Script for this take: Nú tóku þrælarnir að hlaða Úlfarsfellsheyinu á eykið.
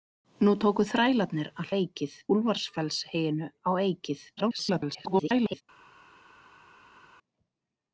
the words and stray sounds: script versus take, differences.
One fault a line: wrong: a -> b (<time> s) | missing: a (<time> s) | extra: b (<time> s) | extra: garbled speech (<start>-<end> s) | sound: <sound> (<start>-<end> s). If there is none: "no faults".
wrong: hlaða -> eykið (1.8 s)
extra: garbled speech (4.4-5.6 s)